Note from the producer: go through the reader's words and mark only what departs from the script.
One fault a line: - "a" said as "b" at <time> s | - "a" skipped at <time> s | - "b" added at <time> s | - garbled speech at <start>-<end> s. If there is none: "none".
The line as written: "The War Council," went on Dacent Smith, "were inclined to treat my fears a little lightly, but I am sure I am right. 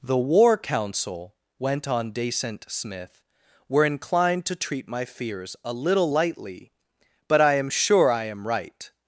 none